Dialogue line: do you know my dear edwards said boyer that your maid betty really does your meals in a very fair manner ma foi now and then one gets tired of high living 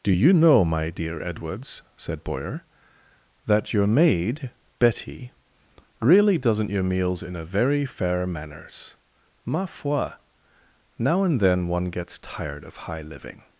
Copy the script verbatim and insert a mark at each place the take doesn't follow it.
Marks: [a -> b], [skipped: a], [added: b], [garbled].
do you know my dear edwards said boyer that your maid betty really [does -> doesn't] your meals in a very fair [manner -> manners] ma foi now and then one gets tired of high living